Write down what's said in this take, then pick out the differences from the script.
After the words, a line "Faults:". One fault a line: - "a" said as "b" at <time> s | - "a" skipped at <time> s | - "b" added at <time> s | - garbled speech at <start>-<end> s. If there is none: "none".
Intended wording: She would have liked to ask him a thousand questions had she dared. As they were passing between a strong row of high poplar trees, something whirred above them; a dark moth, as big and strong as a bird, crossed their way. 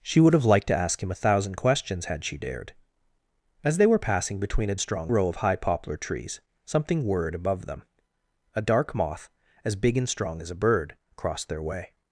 She would have liked to ask him a thousand questions had she dared. As they were passing between a strong row of high poplar trees, something whirred above them; a dark moth, as big and strong as a bird, crossed their way.
Faults:
none